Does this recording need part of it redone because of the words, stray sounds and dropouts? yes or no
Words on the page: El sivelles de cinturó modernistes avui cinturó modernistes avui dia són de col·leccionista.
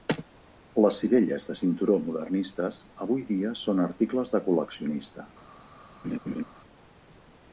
yes